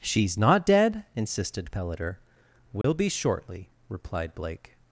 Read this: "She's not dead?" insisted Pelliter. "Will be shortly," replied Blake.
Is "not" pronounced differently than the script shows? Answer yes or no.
no